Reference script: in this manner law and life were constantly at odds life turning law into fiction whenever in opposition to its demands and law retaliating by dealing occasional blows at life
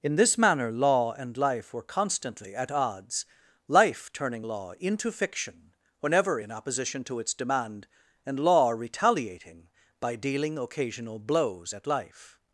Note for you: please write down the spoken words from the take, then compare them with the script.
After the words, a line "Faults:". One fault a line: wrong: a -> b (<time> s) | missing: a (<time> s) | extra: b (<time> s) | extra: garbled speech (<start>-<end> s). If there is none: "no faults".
in this manner law and life were constantly at odds life turning law into fiction whenever in opposition to its demand and law retaliating by dealing occasional blows at life
Faults:
wrong: demands -> demand (7.3 s)